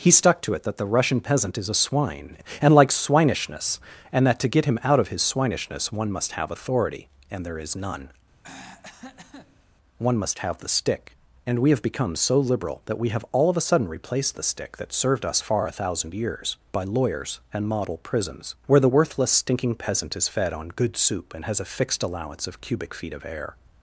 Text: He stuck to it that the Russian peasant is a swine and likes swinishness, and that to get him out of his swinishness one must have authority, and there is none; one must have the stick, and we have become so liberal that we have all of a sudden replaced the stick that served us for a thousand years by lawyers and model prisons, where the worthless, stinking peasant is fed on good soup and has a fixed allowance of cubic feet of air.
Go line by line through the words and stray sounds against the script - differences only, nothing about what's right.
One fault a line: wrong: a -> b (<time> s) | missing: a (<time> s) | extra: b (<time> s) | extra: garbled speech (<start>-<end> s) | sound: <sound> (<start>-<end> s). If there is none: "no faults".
sound: throat clearing (8.4-9.7 s)
wrong: for -> far (15.4 s)